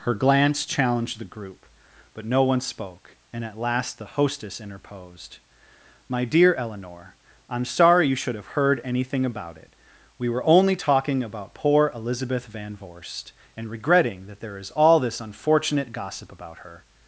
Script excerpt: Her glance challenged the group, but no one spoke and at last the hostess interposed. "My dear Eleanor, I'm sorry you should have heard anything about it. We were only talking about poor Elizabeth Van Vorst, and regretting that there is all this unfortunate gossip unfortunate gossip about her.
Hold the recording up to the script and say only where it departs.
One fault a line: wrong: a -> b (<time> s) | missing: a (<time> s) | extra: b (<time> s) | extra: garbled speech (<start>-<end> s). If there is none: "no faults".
missing: unfortunate gossip (16.3 s)